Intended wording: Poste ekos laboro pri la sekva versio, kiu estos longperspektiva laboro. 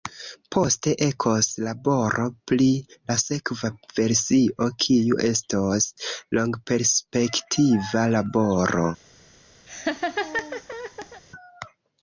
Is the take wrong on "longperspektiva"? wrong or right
right